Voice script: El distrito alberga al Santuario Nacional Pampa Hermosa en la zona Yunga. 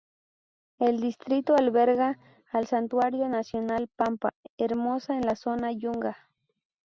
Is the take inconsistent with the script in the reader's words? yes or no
no